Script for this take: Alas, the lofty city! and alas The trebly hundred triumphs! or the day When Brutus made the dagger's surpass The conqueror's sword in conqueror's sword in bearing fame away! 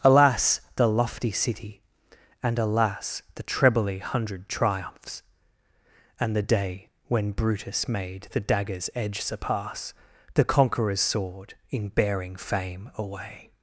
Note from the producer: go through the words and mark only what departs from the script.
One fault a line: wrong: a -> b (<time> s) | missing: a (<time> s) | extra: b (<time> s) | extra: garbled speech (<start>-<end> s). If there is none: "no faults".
wrong: or -> and (6.2 s)
extra: edge (8.9 s)
missing: conqueror's sword in (11.9 s)